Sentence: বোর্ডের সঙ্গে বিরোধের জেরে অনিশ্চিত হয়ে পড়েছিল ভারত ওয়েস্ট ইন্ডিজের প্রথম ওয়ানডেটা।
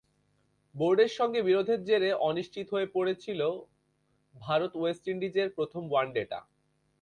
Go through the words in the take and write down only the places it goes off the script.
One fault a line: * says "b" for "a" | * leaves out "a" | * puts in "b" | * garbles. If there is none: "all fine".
all fine